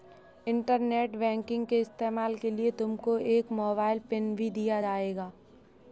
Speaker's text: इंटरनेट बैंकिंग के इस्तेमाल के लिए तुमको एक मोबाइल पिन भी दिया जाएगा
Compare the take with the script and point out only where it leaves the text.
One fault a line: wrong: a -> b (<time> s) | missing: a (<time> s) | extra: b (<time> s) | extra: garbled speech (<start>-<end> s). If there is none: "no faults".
no faults